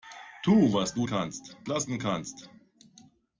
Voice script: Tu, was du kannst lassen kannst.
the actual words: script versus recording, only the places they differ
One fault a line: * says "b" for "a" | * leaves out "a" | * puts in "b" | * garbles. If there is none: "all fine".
all fine